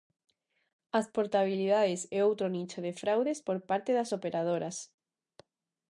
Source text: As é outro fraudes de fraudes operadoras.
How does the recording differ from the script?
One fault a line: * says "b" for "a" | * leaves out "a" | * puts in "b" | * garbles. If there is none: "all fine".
* puts in "portabilidades"
* says "nicho" for "fraudes"
* puts in "por parte das"